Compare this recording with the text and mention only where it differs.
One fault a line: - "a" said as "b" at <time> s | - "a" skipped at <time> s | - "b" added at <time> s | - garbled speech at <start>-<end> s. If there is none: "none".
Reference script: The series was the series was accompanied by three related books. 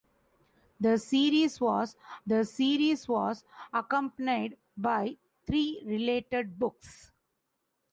none